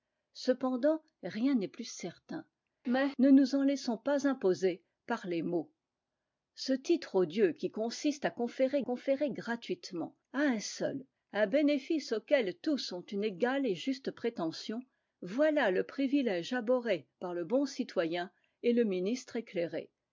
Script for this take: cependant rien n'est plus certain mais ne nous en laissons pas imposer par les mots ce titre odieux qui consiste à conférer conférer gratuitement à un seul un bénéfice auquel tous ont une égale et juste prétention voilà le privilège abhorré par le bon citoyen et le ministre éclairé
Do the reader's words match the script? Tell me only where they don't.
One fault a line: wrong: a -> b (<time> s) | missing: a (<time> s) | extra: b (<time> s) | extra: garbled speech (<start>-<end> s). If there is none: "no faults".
no faults